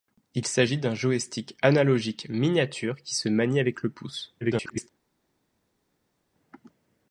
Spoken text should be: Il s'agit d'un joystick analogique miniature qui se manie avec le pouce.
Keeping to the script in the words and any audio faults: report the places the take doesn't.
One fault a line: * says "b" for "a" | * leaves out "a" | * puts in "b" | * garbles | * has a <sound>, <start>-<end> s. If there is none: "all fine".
* garbles